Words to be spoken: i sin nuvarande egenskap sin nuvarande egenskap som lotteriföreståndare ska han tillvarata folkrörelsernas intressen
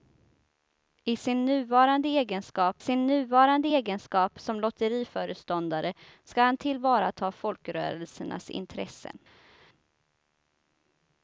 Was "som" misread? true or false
false